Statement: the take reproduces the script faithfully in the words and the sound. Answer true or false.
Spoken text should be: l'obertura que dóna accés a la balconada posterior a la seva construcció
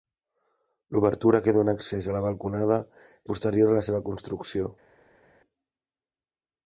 true